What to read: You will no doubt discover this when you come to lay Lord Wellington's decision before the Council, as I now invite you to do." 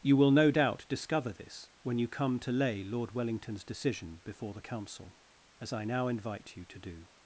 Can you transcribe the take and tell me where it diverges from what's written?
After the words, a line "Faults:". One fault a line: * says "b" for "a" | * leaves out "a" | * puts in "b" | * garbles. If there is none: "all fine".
You will no doubt discover this when you come to lay Lord Wellington's decision before the Council, as I now invite you to do."
Faults:
all fine